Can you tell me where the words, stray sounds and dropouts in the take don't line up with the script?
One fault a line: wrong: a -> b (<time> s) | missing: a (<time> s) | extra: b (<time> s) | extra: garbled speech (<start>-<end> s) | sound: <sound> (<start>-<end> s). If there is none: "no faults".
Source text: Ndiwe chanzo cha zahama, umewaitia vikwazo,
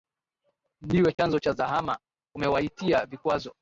sound: dropout (1.1-1.2 s)